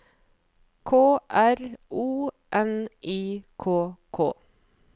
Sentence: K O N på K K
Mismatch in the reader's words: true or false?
true